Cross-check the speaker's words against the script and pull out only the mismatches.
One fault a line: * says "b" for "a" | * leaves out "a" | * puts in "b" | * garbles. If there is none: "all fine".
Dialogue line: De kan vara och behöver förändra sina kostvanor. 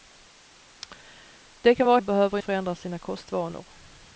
all fine